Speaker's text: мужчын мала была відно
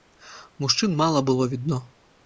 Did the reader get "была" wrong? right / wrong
wrong